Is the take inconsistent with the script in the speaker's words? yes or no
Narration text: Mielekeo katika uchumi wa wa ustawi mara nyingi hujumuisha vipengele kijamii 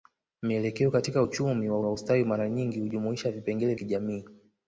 no